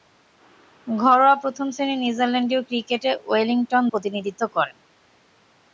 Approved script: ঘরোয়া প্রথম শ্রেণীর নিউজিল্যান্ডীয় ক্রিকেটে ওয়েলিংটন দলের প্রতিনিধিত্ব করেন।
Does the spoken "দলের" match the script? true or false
false